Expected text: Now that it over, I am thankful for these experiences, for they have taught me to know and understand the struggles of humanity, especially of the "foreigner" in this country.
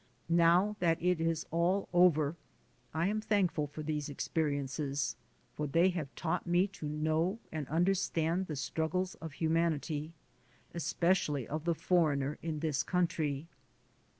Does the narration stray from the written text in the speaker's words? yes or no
yes